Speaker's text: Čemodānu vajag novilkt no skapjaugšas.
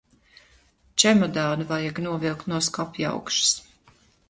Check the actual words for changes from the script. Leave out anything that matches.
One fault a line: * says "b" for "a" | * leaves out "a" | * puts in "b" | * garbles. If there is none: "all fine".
all fine